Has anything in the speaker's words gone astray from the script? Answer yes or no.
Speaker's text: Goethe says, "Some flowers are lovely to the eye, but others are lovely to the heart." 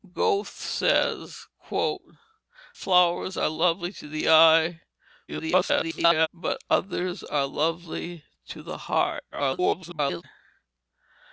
yes